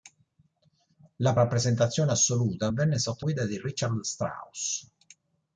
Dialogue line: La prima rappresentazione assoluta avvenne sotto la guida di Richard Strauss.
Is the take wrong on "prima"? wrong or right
wrong